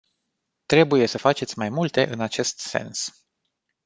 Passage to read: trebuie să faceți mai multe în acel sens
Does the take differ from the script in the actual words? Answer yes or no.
yes